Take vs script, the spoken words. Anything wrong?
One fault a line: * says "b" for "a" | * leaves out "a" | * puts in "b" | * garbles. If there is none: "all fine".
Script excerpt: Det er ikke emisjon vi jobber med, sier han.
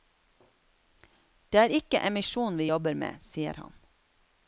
all fine